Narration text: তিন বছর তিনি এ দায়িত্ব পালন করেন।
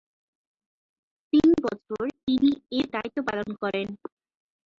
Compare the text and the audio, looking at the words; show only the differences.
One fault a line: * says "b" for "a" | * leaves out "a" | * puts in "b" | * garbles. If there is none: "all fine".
all fine